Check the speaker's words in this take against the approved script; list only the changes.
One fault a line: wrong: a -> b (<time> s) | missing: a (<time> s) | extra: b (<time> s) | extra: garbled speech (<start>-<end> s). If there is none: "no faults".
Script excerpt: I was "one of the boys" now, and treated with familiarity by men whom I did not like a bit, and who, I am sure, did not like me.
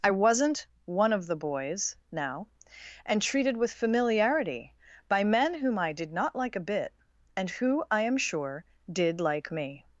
wrong: was -> wasn't (0.1 s)
missing: not (9.2 s)